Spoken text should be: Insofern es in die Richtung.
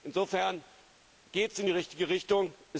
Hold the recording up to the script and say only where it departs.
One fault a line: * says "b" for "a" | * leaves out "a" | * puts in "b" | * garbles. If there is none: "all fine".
* puts in "geht"
* puts in "richtige"